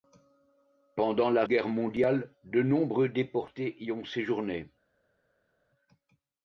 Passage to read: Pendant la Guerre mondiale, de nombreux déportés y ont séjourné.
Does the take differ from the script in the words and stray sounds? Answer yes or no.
no